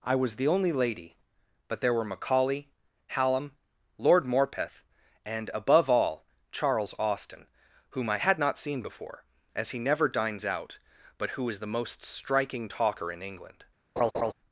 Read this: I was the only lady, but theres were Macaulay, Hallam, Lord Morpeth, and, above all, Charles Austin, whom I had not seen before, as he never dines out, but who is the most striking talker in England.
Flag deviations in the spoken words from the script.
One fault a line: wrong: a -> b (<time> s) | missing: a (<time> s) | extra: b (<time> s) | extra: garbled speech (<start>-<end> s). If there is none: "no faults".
wrong: theres -> there (1.8 s)